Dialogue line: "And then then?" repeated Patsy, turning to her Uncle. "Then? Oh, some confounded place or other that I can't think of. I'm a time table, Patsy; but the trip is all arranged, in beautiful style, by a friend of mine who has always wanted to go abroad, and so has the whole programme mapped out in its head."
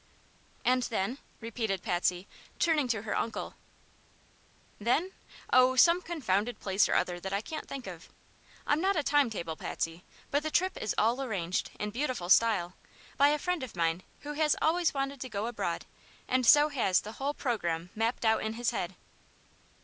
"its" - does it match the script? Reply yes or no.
no